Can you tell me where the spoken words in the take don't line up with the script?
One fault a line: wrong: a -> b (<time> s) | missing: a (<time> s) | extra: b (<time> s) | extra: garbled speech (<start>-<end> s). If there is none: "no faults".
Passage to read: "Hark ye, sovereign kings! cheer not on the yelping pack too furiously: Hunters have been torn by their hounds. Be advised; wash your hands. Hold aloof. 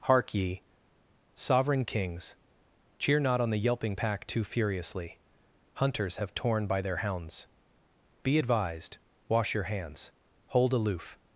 missing: been (6.3 s)